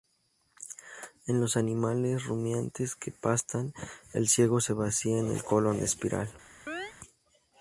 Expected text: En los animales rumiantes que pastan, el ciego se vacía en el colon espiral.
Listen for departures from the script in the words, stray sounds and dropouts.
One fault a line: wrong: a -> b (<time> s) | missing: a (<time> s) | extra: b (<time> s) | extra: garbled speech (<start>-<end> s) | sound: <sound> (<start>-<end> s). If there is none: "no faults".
sound: chirp (6.7-6.9 s)